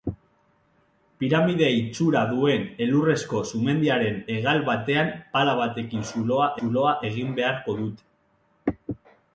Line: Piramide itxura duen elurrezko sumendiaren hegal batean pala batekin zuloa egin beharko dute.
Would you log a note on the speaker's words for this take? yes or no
yes